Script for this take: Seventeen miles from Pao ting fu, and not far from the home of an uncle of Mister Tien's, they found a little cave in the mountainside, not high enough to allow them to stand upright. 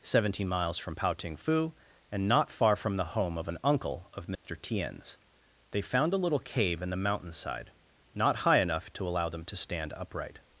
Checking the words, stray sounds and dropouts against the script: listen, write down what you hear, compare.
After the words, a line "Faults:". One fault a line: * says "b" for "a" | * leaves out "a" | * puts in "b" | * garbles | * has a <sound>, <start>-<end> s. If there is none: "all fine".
Seventeen miles from Pao ting fu, and not far from the home of an uncle of Mister Tien's, they found a little cave in the mountainside, not high enough to allow them to stand upright.
Faults:
* has a dropout, 4.3-4.5 s